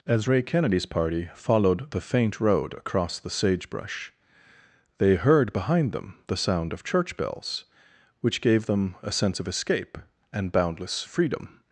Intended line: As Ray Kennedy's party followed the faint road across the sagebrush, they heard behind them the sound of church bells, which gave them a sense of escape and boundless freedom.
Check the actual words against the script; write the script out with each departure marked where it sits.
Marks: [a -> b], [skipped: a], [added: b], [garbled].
As Ray Kennedy's party followed the faint road across the sagebrush, they heard behind them the sound of church bells, which gave them a sense of escape and boundless freedom.